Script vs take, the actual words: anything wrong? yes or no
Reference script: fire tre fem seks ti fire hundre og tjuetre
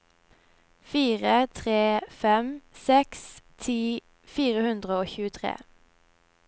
no